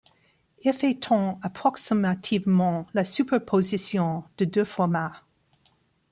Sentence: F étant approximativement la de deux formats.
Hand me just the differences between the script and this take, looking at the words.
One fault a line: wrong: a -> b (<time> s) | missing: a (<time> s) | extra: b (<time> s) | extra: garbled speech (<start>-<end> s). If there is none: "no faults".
extra: superposition (3.0 s)